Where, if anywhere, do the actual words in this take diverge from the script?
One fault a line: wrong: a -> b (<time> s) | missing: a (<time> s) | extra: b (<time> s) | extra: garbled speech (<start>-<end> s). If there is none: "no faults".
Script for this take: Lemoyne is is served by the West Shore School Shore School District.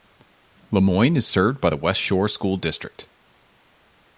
missing: is (1.3 s)
missing: Shore School (2.6 s)